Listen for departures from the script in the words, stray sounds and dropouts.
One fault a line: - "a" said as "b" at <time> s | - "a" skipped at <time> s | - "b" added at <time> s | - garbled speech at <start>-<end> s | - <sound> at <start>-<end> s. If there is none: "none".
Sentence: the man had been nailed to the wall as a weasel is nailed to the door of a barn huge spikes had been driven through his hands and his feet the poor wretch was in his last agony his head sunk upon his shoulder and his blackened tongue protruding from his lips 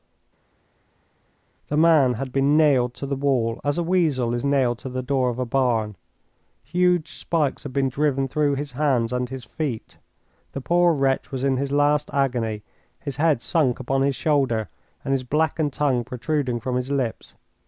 none